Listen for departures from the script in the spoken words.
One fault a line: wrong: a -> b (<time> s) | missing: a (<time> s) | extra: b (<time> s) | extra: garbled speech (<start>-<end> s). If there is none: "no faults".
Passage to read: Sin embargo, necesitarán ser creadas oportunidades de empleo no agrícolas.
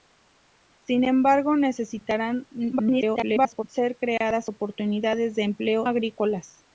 extra: garbled speech (2.7-3.6 s)
missing: no (5.9 s)